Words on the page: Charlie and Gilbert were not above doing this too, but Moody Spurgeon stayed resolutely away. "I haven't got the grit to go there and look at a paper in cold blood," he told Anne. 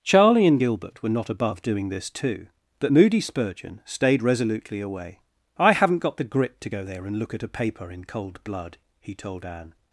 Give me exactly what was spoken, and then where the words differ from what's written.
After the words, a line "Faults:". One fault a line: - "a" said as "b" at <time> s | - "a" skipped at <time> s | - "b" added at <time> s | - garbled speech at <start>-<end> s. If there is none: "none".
Charlie and Gilbert were not above doing this too, but Moody Spurgeon stayed resolutely away. "I haven't got the grit to go there and look at a paper in cold blood," he told Anne.
Faults:
none